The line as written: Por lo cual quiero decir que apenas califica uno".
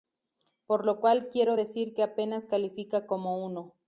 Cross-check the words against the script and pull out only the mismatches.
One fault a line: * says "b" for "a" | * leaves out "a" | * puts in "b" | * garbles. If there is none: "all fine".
* puts in "como"